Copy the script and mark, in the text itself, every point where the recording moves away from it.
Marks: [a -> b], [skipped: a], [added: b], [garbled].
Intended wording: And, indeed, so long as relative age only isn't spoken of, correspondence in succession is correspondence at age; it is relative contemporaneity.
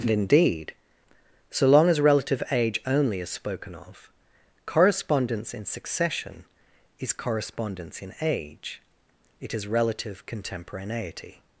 And, indeed, so long as relative age only [isn't -> is] spoken of, correspondence in succession is correspondence [at -> in] age; it is relative contemporaneity.